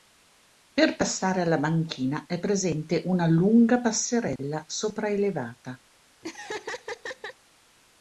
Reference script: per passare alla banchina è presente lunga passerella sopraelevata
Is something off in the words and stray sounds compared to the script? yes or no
yes